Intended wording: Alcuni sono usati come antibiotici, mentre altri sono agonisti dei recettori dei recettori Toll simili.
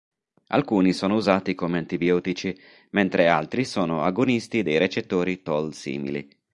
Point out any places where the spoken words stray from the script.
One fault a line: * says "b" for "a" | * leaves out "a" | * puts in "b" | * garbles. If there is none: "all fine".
* leaves out "dei recettori"